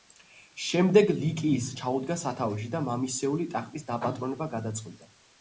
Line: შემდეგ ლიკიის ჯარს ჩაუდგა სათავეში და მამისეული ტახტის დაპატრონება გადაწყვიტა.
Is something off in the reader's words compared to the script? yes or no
yes